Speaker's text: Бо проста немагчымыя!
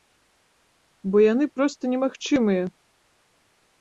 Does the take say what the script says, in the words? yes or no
no